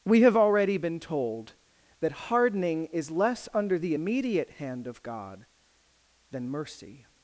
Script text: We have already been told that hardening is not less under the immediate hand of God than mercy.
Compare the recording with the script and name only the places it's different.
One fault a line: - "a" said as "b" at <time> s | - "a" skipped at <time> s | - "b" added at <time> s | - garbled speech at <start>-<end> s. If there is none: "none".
- "not" skipped at 3.1 s